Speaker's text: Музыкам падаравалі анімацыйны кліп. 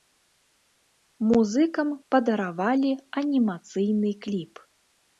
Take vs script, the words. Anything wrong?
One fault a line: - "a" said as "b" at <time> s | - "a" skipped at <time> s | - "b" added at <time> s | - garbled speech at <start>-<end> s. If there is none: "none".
none